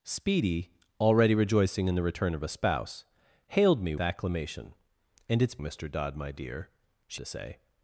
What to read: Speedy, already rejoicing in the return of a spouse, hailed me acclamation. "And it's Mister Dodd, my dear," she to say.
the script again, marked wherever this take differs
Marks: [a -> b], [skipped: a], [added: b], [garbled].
Speedy, already rejoicing in the return of a spouse, hailed me acclamation. "And it's Mister Dodd, my dear," she to say.